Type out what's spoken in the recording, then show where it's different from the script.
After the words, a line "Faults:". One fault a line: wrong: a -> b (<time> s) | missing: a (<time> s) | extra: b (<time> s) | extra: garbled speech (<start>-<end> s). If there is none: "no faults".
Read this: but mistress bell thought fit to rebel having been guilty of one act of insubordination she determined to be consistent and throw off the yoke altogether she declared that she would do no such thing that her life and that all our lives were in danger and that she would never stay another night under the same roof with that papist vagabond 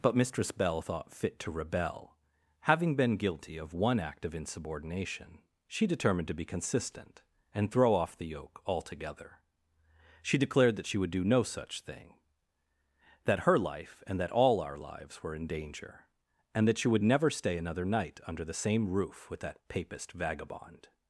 but mistress bell thought fit to rebel having been guilty of one act of insubordination she determined to be consistent and throw off the yoke altogether she declared that she would do no such thing that her life and that all our lives were in danger and that she would never stay another night under the same roof with that papist vagabond
Faults:
no faults